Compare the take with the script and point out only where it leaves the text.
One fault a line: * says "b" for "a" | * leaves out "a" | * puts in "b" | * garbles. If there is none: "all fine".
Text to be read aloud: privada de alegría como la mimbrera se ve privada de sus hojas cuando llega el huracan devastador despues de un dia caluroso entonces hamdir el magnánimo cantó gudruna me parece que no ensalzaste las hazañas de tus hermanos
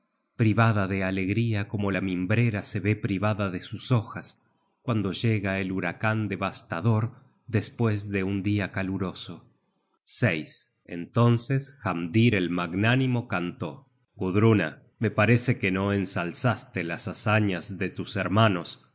all fine